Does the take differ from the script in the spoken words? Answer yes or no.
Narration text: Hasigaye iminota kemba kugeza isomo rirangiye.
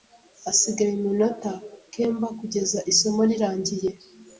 no